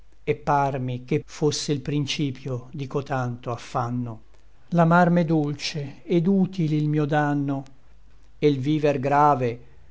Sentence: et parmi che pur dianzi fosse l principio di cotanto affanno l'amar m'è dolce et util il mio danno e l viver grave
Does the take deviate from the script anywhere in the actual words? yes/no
yes